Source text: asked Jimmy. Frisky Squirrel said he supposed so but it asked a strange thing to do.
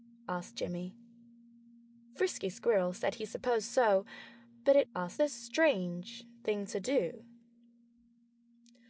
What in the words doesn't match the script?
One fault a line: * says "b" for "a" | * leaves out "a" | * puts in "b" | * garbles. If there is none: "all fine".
all fine